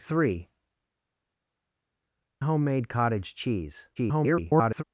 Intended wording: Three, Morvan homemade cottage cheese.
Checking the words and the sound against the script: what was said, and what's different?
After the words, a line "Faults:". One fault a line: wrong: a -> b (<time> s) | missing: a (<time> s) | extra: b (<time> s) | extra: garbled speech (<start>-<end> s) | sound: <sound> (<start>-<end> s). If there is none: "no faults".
Three, Homemade cottage cheese. [garbled]
Faults:
missing: Morvan (0.5 s)
extra: garbled speech (4.0-4.8 s)